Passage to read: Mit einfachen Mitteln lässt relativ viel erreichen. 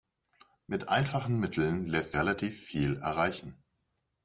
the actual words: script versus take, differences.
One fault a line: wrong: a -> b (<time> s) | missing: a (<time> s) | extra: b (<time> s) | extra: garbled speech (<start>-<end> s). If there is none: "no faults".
no faults